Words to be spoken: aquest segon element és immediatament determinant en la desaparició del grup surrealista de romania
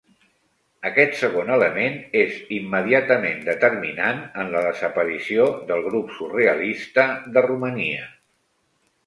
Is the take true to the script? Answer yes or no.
yes